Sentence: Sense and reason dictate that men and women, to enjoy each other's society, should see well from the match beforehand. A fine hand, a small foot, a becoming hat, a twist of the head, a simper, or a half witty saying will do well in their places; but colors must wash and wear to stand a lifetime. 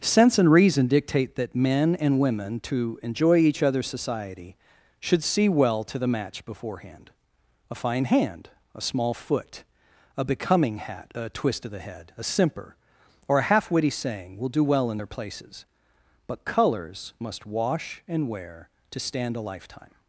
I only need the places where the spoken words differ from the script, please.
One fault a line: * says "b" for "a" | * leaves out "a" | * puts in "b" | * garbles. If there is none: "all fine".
* says "to" for "from"